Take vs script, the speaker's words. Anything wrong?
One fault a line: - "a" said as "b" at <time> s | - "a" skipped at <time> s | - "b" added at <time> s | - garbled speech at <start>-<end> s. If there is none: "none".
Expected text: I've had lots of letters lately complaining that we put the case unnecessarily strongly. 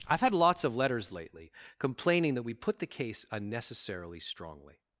none